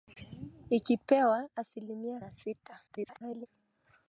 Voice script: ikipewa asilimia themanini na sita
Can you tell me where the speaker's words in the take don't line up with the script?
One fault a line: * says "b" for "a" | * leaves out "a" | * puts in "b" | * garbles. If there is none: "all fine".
* leaves out "themanini"
* garbles